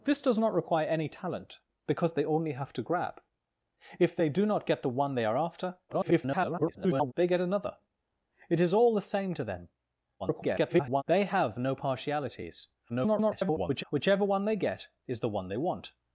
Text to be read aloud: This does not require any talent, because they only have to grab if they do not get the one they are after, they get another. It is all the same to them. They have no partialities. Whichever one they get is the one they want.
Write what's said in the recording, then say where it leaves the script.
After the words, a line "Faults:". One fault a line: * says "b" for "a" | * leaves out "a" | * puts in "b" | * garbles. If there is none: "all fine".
This does not require any talent, because they only have to grab if they do not get the one they are after, [garbled] they get another. It is all the same to them. [garbled] They have no partialities. [garbled] Whichever one they get is the one they want.
Faults:
* garbles
* garbles
* garbles